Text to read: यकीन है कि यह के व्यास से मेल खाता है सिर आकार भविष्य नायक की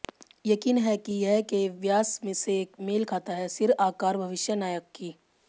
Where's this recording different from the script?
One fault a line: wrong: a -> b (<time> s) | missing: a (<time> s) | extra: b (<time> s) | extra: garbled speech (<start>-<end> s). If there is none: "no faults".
no faults